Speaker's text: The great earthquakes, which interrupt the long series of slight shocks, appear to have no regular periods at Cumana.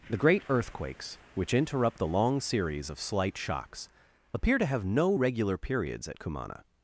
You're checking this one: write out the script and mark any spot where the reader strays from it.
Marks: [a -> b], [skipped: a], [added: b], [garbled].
The great earthquakes, which interrupt the long series of slight shocks, appear to have no regular periods at Cumana.